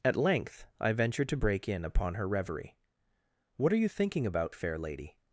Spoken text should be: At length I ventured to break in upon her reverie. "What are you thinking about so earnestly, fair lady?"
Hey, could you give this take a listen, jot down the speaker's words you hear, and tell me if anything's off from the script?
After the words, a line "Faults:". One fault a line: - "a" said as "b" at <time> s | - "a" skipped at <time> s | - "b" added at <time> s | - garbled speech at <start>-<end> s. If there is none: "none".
At length I ventured to break in upon her reverie. "What are you thinking about fair lady?"
Faults:
- "so earnestly" skipped at 4.5 s